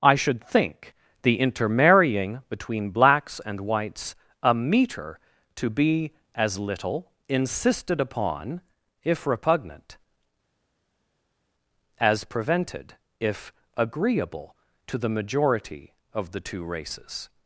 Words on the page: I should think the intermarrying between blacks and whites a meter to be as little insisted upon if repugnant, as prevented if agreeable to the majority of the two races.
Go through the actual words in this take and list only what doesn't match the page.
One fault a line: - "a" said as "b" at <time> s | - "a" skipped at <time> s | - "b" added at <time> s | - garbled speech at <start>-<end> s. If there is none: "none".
none